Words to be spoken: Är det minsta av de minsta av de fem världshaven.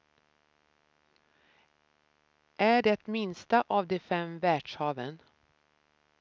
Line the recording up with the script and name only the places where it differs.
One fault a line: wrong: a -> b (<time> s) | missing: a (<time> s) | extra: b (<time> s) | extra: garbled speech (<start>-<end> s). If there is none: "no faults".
missing: minsta av de (4.0 s)